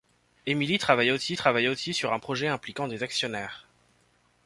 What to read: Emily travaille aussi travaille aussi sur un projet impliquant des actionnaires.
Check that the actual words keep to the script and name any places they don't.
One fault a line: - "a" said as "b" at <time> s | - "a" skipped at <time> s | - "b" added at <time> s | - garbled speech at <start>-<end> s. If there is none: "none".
none